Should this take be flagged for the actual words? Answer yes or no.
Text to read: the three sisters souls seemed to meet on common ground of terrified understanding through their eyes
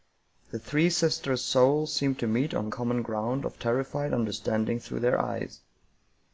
no